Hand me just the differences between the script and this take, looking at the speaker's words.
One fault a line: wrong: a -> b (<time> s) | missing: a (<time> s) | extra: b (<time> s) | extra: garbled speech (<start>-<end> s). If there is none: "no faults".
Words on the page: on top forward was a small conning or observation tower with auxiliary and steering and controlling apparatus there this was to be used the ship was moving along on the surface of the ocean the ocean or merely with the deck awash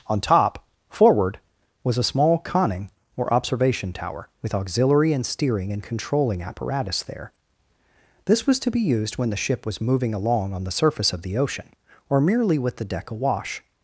extra: when (9.2 s)
missing: the ocean (11.7 s)